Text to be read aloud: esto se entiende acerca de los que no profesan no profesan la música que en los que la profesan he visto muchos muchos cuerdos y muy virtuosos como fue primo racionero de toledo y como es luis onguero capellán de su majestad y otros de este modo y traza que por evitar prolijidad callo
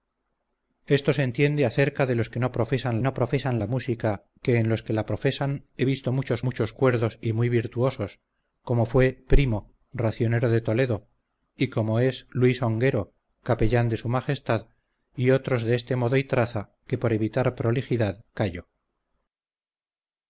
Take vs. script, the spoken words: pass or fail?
pass